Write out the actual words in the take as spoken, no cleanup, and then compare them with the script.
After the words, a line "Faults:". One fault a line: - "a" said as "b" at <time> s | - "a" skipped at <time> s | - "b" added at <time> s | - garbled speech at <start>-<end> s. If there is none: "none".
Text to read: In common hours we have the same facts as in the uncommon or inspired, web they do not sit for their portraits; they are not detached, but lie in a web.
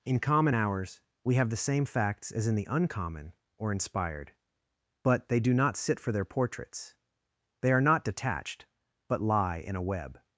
In common hours we have the same facts as in the uncommon or inspired, but they do not sit for their portraits; they are not detached, but lie in a web.
Faults:
- "web" said as "but" at 5.0 s